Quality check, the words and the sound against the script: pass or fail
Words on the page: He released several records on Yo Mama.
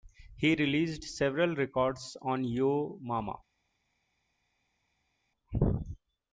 pass